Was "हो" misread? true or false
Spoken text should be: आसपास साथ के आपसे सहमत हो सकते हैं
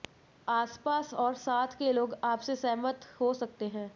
false